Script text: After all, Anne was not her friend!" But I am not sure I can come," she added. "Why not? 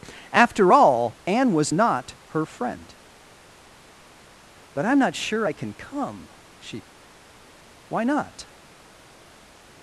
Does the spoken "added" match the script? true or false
false